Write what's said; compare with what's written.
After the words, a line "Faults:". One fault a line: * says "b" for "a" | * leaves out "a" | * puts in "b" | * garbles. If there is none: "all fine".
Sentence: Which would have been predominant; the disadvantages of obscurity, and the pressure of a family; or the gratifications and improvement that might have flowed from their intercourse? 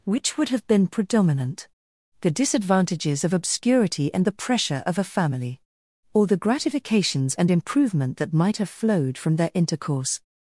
Which would have been predominant; the disadvantages of obscurity, and the pressure of a family; or the gratifications and improvement that might have flowed from their intercourse?
Faults:
all fine